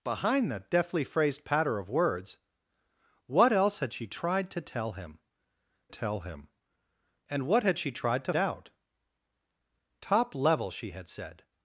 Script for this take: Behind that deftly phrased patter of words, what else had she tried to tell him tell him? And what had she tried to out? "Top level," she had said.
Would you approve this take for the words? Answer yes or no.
yes